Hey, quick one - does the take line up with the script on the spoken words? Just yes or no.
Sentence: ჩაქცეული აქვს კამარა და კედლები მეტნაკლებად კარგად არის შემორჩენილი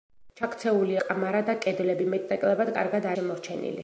no